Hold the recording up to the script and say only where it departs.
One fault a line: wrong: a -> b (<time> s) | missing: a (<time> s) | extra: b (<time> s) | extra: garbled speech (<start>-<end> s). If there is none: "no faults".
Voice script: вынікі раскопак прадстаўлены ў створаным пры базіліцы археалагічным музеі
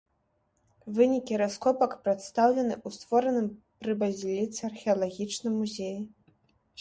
no faults